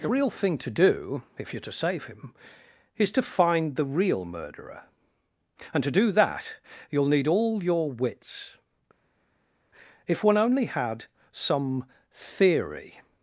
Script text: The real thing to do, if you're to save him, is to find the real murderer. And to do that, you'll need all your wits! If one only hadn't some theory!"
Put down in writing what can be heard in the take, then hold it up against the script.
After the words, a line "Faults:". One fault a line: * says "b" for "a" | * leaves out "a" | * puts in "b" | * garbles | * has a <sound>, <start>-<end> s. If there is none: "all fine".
The real thing to do, if you're to save him, is to find the real murderer. And to do that, you'll need all your wits! If one only had some theory!"
Faults:
* says "had" for "hadn't"